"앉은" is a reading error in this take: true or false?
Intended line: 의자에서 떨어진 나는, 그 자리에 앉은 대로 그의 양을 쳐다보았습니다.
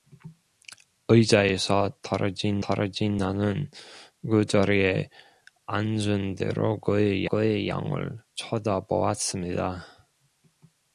false